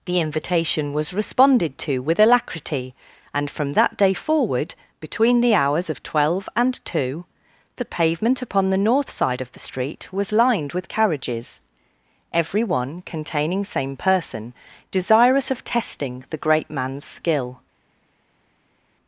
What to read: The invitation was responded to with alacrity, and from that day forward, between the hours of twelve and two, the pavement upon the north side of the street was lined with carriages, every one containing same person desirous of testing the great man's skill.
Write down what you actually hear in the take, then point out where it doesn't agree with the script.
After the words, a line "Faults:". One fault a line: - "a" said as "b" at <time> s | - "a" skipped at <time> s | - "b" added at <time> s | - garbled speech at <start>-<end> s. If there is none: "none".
The invitation was responded to with alacrity, and from that day forward, between the hours of twelve and two, the pavement upon the north side of the street was lined with carriages, every one containing same person desirous of testing the great man's skill.
Faults:
none